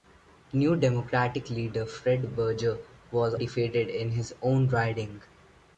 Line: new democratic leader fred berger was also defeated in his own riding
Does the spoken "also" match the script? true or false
false